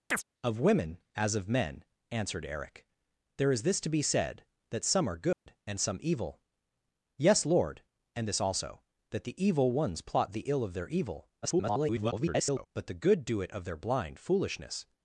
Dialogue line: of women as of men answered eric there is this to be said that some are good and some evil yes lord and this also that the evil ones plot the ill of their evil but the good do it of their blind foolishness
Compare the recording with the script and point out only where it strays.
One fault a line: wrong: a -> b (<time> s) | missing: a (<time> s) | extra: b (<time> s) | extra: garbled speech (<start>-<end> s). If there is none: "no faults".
extra: garbled speech (11.4-12.7 s)